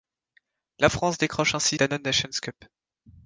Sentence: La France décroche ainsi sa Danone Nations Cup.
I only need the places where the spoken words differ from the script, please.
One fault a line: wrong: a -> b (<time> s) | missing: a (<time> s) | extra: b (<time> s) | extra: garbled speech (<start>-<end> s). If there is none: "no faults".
missing: sa (1.8 s)